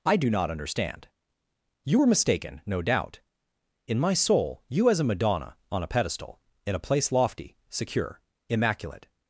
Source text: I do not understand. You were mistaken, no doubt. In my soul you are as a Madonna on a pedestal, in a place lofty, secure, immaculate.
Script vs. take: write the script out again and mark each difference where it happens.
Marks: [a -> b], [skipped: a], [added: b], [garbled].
I do not understand. You were mistaken, no doubt. In my soul you [skipped: are] as a Madonna on a pedestal, in a place lofty, secure, immaculate.